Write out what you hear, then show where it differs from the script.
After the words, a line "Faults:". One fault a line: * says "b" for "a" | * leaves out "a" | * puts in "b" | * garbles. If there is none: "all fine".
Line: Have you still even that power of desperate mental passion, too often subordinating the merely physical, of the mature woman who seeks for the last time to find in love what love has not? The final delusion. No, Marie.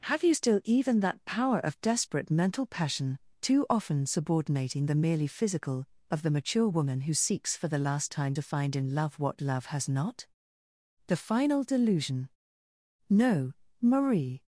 Have you still even that power of desperate mental passion, too often subordinating the merely physical, of the mature woman who seeks for the last time to find in love what love has not? The final delusion. No, Marie.
Faults:
all fine